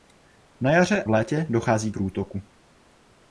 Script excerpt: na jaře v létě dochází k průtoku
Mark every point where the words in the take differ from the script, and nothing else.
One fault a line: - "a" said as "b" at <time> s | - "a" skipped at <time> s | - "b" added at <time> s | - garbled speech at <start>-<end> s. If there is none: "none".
none